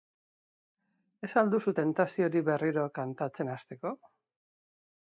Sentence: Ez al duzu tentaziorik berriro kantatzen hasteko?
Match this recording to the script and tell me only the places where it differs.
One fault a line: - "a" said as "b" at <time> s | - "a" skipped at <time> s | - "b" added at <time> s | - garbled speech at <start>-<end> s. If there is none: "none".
none